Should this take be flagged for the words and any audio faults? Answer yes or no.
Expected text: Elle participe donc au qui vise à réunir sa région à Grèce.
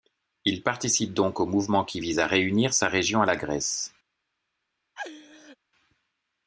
yes